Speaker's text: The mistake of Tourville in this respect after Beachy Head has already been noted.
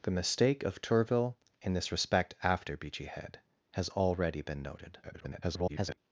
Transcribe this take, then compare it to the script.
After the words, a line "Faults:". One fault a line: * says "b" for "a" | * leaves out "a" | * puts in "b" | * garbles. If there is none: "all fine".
The mistake of Tourville in this respect after Beachy Head has already been noted. [garbled]
Faults:
* garbles